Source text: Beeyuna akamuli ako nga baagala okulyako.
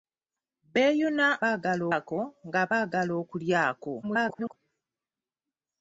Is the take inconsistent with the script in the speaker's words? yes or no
yes